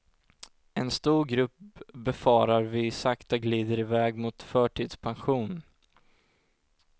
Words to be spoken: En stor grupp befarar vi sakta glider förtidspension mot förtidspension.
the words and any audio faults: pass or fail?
fail